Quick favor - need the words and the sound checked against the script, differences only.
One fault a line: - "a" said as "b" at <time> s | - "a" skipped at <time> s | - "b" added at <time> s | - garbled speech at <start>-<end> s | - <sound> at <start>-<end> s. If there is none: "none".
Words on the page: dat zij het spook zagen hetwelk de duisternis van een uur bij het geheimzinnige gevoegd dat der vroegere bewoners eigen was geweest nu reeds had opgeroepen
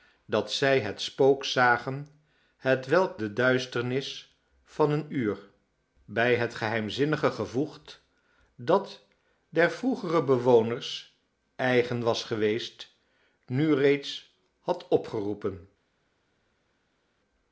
none